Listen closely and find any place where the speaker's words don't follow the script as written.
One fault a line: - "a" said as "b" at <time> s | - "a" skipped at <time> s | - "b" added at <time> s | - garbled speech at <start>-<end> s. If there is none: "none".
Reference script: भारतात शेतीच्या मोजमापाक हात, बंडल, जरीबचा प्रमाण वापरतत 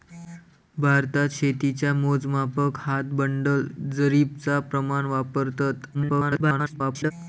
- garbled speech at 5.9-7.1 s